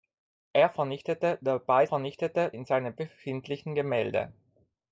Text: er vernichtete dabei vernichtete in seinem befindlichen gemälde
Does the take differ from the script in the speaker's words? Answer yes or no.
no